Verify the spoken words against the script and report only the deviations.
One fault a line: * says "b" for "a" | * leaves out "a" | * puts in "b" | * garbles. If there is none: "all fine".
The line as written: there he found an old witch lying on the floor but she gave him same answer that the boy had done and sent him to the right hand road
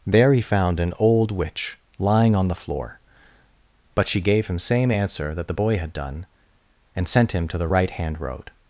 all fine